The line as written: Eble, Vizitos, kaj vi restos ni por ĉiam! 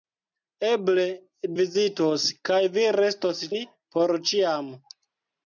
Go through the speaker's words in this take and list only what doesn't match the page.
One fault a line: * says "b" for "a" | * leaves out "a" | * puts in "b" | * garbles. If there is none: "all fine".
all fine